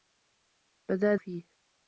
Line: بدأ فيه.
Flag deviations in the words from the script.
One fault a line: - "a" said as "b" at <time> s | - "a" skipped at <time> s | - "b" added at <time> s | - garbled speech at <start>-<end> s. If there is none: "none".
none